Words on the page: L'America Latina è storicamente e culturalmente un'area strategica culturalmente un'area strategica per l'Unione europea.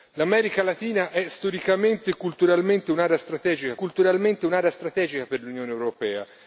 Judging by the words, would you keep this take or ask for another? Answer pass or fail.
pass